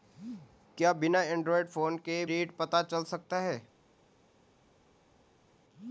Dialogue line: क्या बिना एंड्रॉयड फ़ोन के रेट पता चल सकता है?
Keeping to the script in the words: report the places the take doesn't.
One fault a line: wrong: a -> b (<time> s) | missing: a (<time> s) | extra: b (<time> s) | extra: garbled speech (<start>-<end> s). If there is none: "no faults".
no faults